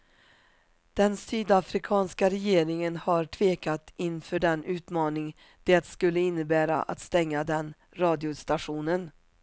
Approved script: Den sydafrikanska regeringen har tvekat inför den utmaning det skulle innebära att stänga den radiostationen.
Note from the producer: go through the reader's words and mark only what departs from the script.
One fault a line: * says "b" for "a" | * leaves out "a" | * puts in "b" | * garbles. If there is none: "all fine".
all fine